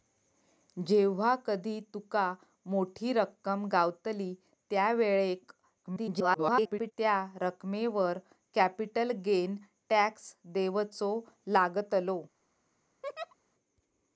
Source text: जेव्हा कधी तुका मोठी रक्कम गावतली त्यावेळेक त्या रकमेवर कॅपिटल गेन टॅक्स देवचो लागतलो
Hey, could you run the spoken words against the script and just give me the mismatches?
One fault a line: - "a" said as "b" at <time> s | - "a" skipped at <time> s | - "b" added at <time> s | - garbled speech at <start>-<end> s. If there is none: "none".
- garbled speech at 5.8-6.9 s